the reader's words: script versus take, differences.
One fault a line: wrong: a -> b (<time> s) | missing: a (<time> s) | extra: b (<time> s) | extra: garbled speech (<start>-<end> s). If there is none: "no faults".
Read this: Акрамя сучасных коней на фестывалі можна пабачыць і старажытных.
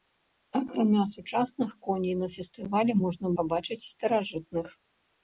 no faults